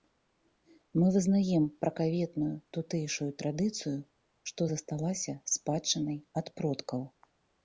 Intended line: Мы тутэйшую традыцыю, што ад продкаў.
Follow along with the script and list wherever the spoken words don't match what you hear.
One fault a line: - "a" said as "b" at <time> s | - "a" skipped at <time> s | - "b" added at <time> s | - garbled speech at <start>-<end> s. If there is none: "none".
- "вызнаем пракаветную" added at 1.1 s
- "засталася спадчынай" added at 4.7 s